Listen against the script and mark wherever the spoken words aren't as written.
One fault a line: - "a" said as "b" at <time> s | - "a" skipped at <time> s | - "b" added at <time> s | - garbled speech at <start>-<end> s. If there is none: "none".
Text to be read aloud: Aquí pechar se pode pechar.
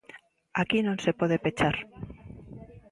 - "pechar" said as "non" at 0.8 s